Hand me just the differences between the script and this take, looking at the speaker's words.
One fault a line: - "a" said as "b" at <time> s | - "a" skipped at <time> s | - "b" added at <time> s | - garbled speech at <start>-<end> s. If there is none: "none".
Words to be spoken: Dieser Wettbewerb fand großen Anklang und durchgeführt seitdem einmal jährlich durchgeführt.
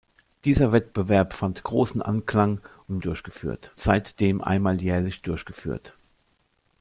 none